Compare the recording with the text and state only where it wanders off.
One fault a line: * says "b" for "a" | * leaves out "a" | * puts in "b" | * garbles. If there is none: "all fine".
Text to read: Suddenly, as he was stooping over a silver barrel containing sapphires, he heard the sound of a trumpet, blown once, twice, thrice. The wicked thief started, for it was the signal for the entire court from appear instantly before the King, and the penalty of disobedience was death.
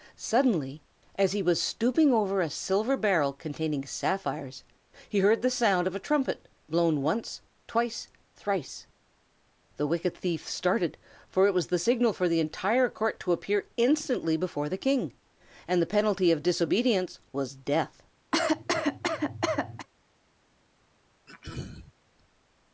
* says "to" for "from"